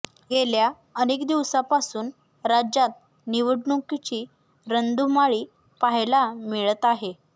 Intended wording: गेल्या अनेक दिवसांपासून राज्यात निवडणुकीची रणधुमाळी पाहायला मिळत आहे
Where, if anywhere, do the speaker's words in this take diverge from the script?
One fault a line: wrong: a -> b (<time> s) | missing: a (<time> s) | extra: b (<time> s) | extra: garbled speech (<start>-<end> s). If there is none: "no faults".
no faults